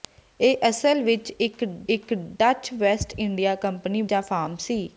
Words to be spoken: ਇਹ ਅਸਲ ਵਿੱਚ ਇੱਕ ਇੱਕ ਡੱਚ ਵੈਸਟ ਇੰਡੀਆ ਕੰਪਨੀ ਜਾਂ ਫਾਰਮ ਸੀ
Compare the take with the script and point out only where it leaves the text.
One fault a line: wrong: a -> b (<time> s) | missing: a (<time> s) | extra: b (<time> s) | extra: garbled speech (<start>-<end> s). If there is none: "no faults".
no faults